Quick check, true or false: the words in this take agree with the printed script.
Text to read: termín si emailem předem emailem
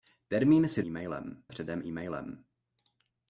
true